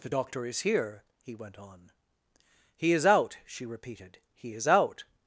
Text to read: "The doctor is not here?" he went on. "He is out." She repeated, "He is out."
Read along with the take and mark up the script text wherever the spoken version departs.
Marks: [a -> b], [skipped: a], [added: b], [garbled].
"The doctor is [skipped: not] here?" he went on. "He is out." She repeated, "He is out."